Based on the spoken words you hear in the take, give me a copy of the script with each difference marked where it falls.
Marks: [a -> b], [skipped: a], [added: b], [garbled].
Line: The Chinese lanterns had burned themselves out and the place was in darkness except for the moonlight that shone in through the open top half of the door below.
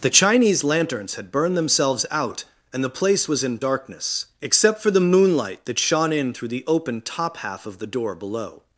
The Chinese lanterns had burned themselves out and the place was in darkness except for the moonlight that shone in through the open top half of the door below.